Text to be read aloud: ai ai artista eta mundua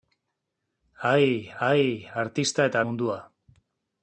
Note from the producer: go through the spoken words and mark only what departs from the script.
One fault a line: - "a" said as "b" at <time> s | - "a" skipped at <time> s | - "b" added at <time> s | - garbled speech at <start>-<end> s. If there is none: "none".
none